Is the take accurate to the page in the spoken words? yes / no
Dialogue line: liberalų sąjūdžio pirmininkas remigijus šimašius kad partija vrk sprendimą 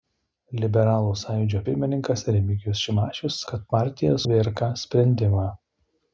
yes